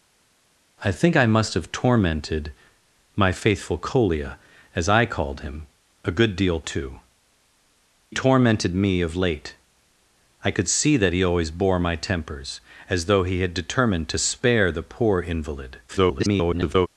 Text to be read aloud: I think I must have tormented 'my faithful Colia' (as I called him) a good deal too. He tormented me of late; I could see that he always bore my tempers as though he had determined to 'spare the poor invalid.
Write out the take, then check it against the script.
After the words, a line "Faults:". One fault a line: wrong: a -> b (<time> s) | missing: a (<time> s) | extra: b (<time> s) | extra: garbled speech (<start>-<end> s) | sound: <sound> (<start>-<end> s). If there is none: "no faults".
I think I must have tormented 'my faithful Colia' (as I called him) a good deal too. Tormented me of late; I could see that he always bore my tempers as though he had determined to 'spare the poor invalid. [garbled]
Faults:
missing: He (7.0 s)
extra: garbled speech (15.9-16.9 s)